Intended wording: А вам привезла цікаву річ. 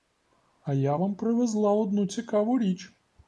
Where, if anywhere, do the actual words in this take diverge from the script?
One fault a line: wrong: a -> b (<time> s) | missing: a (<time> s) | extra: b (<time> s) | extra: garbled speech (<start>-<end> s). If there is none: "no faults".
extra: я (0.7 s)
extra: одну (1.7 s)